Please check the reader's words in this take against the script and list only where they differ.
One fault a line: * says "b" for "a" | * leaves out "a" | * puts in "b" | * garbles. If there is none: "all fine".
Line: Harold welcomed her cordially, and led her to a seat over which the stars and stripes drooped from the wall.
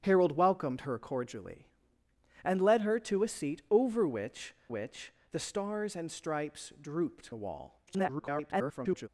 * puts in "which"
* leaves out "from"
* garbles